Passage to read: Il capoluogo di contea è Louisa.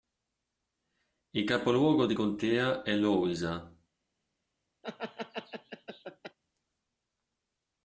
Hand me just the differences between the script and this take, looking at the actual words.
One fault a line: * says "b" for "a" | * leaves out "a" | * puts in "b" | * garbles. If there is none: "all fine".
all fine